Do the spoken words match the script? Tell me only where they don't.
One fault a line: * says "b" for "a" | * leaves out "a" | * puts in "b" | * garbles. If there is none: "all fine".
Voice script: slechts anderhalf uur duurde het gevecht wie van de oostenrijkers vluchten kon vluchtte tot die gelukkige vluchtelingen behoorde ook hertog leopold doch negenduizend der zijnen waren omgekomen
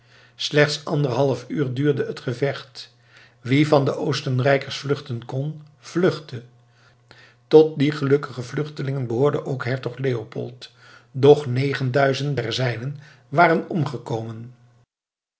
all fine